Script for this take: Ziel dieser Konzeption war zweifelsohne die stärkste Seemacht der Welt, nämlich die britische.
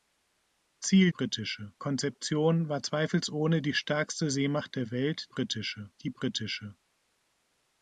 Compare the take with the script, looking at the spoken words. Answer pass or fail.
fail